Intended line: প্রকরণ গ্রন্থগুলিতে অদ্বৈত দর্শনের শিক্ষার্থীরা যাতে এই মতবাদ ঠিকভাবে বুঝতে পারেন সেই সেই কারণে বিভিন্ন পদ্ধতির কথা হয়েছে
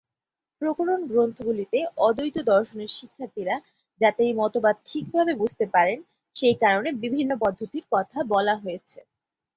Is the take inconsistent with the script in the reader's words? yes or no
yes